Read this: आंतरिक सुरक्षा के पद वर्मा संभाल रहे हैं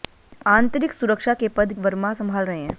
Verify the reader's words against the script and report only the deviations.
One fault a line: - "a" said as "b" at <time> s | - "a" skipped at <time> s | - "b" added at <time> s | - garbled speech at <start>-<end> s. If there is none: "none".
none